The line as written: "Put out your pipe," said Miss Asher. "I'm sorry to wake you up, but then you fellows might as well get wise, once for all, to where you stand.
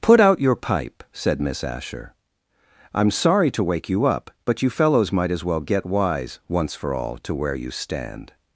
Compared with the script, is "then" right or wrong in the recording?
wrong